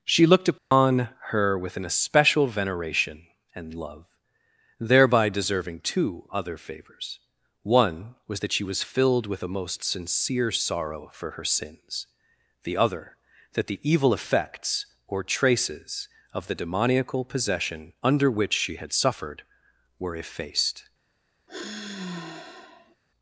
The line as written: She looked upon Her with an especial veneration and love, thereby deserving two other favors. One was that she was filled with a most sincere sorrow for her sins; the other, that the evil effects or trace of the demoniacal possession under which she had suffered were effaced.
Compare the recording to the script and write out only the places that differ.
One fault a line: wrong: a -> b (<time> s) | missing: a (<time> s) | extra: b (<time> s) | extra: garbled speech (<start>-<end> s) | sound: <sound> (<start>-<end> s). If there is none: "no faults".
sound: dropout (0.6-0.7 s)
wrong: trace -> traces (15.2 s)
sound: sigh (21.5-23.0 s)